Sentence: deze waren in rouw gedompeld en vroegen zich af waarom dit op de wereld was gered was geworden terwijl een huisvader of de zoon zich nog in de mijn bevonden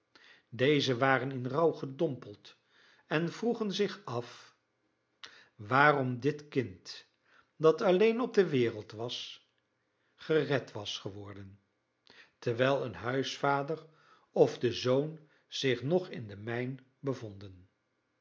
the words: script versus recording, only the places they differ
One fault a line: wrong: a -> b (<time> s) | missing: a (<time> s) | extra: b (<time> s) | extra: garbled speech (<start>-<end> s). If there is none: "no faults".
extra: kind dat alleen (6.5 s)